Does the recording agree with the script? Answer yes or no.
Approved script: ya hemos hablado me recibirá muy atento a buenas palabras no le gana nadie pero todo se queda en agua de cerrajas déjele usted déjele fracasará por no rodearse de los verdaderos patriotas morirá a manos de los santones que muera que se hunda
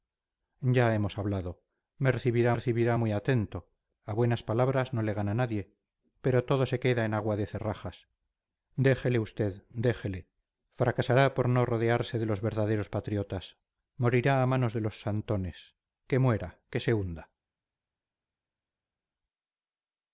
no